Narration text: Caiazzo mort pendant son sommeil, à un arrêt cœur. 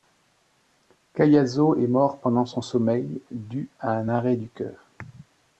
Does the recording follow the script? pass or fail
fail